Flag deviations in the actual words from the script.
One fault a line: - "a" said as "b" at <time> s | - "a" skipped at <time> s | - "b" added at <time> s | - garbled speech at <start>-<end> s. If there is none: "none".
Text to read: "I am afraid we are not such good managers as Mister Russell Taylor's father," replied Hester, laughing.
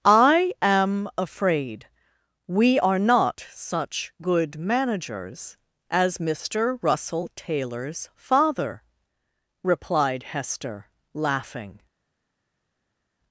none